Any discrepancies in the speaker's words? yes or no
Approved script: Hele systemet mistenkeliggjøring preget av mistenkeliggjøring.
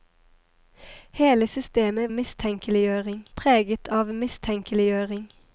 no